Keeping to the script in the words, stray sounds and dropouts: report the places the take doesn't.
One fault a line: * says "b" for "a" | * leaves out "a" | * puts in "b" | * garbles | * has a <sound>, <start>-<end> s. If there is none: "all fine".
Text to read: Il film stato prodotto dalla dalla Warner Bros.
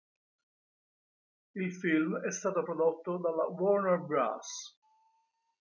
* puts in "è"
* leaves out "dalla"